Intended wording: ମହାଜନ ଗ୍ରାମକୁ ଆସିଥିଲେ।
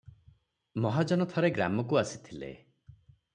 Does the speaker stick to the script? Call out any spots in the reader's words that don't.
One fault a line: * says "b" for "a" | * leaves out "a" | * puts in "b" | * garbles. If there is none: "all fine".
* puts in "ଥରେ"